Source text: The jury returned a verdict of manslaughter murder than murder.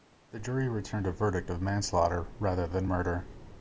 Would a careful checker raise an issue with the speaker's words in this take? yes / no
yes